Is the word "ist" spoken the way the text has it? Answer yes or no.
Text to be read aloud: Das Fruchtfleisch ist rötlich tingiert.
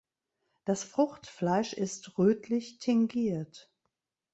yes